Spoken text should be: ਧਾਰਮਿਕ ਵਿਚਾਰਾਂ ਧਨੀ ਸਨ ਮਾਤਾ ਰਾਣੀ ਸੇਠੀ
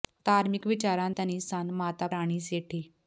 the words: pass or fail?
pass